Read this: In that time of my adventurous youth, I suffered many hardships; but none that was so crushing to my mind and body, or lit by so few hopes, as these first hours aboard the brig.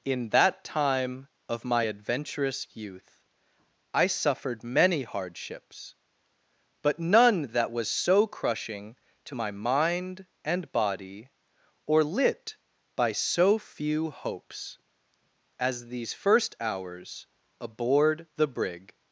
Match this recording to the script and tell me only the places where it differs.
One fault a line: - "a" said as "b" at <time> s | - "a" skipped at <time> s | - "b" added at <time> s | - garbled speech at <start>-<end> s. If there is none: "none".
none